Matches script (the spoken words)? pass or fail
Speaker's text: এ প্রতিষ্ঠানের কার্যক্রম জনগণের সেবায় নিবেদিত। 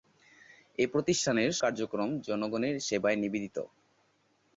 pass